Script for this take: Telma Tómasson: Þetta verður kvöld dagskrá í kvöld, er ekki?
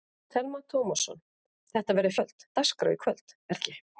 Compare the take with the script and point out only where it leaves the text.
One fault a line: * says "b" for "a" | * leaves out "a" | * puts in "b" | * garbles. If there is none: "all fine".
all fine